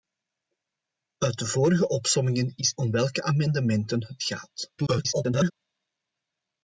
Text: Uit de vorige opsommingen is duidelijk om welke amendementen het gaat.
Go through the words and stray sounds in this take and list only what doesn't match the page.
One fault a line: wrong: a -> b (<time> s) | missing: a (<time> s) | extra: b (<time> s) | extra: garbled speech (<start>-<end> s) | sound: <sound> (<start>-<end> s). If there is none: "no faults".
missing: duidelijk (2.8 s)
extra: garbled speech (4.8-5.5 s)